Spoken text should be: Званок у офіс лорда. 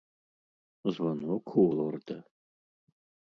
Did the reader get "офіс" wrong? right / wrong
wrong